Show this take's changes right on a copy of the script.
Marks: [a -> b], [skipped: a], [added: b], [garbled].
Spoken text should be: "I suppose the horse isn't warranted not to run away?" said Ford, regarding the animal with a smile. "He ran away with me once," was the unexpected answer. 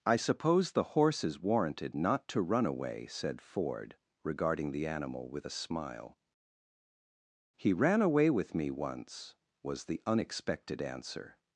"I suppose the horse [isn't -> is] warranted not to run away?" said Ford, regarding the animal with a smile. "He ran away with me once," was the unexpected answer.